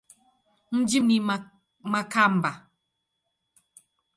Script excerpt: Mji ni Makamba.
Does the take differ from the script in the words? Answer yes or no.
no